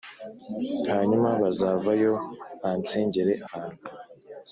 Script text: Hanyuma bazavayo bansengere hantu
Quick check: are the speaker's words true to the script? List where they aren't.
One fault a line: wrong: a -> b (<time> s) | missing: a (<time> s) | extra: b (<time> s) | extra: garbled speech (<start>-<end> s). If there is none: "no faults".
no faults